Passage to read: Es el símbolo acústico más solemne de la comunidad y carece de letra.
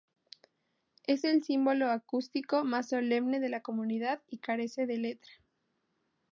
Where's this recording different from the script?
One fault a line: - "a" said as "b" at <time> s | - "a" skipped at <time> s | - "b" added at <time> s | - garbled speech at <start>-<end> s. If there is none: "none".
none